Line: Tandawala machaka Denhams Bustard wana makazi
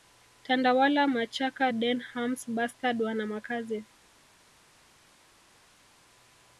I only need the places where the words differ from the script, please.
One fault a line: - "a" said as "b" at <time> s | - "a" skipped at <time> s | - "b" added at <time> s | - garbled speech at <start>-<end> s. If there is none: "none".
none